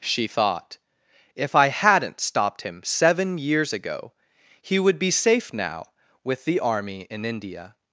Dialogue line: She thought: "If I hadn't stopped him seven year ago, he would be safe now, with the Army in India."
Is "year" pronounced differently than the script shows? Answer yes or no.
yes